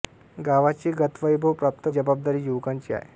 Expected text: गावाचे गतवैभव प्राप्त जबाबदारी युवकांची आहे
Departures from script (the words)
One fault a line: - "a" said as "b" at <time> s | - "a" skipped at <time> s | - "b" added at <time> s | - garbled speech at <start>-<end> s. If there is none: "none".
none